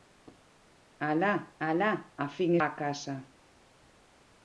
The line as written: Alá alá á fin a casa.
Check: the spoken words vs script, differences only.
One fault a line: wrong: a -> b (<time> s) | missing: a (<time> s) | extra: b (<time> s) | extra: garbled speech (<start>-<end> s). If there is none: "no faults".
no faults